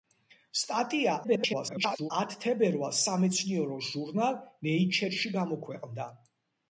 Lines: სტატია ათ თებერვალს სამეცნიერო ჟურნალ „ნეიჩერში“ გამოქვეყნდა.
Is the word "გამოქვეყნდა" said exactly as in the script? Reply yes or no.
yes